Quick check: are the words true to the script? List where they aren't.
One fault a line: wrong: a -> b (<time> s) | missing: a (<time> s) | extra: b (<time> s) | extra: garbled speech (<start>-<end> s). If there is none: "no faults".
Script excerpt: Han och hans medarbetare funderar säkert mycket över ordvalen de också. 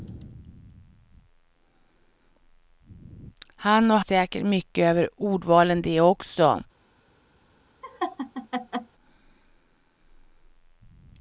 missing: hans medarbetare funderar (4.0 s)